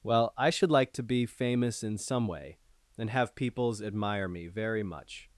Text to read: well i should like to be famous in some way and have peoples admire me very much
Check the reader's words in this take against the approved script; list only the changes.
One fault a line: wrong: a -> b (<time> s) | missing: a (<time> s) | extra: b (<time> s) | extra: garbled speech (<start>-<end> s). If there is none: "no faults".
no faults